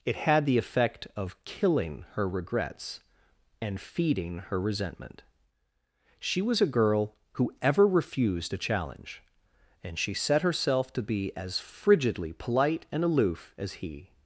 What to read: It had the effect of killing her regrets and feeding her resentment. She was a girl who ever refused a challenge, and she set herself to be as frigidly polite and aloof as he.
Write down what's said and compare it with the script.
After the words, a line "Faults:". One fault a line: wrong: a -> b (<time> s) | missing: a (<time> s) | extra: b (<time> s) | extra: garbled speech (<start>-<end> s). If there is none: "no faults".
It had the effect of killing her regrets and feeding her resentment. She was a girl who ever refused a challenge, and she set herself to be as frigidly polite and aloof as he.
Faults:
no faults